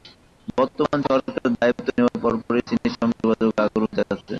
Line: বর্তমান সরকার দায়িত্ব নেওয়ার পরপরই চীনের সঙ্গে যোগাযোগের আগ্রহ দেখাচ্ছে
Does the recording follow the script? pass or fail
pass